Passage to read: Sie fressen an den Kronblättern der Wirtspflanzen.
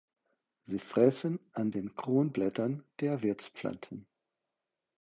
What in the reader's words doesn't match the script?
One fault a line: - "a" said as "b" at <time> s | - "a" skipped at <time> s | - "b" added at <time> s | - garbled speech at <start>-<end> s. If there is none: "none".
none